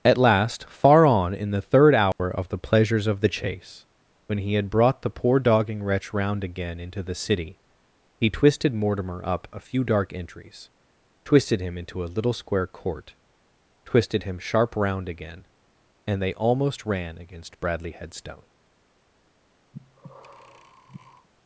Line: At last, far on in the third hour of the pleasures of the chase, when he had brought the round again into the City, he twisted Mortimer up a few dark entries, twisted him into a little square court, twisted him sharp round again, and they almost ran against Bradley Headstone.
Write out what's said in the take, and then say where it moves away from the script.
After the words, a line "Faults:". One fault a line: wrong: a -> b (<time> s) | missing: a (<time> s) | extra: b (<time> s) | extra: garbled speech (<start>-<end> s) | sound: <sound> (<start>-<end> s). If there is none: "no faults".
At last, far on in the third hour of the pleasures of the chase, when he had brought the poor dogging wretch round again into the City, he twisted Mortimer up a few dark entries, twisted him into a little square court, twisted him sharp round again, and they almost ran against Bradley Headstone.
Faults:
sound: dropout (2.1-2.2 s)
extra: poor dogging wretch (5.1 s)
sound: breath (19.7-21.3 s)